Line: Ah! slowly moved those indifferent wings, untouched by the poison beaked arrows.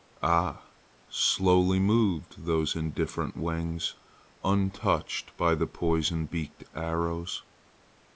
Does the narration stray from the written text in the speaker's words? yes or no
no